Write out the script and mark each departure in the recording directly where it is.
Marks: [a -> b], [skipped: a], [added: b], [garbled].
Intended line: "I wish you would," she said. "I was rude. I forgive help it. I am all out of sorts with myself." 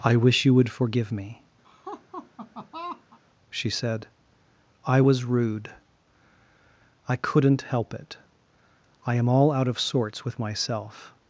"I wish you would," [added: forgive me] she said. "I was rude. I [forgive -> couldn't] help it. I am all out of sorts with myself."